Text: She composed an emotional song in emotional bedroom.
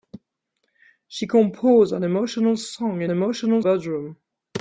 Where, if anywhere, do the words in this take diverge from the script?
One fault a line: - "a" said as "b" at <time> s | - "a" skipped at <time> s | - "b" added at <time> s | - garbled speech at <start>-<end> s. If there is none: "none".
none